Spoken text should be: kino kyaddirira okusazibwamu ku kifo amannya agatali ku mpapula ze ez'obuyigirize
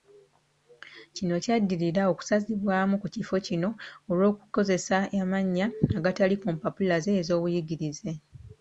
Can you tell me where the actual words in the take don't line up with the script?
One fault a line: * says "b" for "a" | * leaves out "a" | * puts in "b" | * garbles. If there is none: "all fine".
* puts in "kino olw'okukozesa"